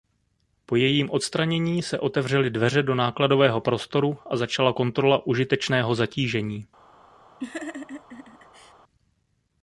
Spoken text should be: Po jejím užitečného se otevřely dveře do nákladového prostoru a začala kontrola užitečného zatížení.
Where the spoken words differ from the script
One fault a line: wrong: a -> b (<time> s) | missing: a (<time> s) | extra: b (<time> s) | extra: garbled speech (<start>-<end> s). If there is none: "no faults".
wrong: užitečného -> odstranění (1.1 s)